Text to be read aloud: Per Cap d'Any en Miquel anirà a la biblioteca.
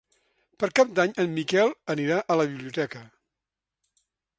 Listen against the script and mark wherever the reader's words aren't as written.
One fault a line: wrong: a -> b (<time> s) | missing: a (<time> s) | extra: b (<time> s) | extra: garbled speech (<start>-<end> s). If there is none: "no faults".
no faults